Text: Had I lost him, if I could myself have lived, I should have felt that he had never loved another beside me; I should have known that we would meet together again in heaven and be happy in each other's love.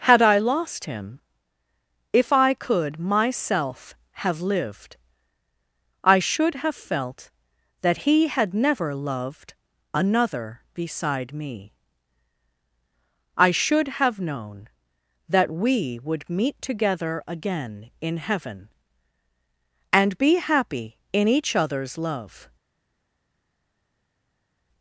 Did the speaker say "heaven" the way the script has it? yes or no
yes